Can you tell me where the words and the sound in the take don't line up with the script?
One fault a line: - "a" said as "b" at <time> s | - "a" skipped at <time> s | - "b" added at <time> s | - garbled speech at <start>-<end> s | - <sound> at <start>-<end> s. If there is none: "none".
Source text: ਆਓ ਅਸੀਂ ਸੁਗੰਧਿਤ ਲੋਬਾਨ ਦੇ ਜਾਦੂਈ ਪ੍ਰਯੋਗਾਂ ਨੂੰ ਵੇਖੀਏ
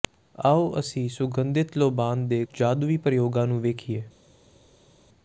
none